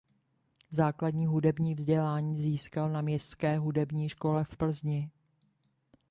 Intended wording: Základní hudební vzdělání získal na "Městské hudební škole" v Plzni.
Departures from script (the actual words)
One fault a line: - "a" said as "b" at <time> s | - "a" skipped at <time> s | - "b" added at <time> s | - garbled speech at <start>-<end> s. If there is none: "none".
none